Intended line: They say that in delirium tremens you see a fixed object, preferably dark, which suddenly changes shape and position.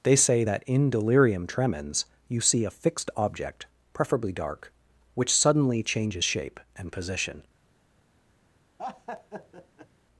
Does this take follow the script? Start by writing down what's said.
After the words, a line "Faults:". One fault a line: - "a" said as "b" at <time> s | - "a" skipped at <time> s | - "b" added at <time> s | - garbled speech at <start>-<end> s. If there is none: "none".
They say that in delirium tremens you see a fixed object, preferably dark, which suddenly changes shape and position.
Faults:
none